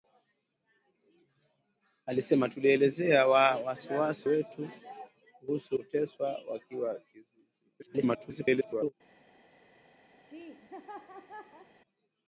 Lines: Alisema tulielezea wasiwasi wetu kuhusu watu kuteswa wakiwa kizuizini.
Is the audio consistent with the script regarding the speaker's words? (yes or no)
no